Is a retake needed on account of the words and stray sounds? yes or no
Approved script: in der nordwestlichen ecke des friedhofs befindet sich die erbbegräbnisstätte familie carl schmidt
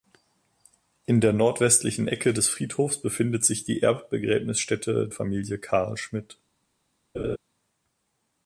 yes